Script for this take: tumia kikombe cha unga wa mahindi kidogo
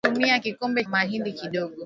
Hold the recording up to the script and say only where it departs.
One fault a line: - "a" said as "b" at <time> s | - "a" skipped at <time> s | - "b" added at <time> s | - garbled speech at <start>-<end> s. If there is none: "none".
- "cha unga wa" skipped at 0.8 s